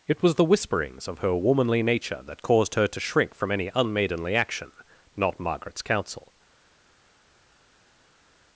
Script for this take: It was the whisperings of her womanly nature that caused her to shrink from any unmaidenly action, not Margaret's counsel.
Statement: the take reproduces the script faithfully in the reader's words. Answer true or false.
true